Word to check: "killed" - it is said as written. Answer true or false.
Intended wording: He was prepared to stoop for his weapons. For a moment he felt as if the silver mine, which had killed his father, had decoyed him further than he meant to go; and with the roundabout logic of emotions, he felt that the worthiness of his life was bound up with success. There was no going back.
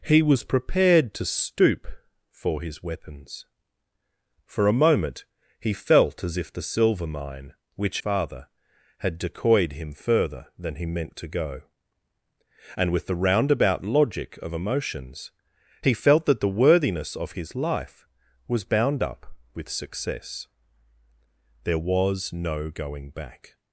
false